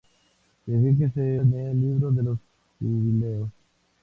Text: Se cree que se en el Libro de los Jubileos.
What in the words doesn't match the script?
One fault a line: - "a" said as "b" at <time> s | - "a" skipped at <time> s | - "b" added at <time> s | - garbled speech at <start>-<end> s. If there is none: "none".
none